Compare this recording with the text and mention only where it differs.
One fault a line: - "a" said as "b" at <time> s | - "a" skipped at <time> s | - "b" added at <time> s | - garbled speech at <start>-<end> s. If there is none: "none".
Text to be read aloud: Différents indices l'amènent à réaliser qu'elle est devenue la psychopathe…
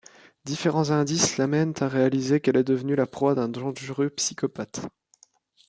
- "proie d'un dangereux" added at 3.0 s